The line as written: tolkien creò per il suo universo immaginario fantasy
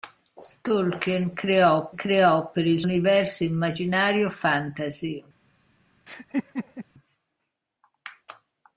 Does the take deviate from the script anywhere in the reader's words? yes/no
yes